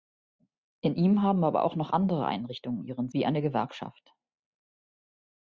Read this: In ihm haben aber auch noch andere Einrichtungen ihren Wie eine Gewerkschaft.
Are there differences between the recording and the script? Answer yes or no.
no